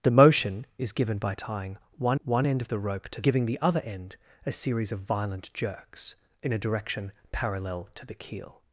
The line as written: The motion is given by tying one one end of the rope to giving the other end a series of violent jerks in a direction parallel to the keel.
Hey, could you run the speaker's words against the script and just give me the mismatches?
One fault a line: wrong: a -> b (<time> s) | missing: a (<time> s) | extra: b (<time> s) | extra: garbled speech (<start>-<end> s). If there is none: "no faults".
no faults